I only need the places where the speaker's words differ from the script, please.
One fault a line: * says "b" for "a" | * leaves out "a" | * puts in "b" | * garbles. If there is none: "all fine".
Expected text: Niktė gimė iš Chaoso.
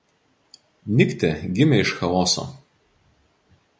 all fine